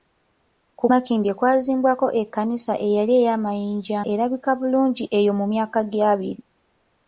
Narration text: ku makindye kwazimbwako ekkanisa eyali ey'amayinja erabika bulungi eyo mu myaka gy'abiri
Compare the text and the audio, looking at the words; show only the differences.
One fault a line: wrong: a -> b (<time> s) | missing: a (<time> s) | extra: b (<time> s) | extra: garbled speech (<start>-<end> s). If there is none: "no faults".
no faults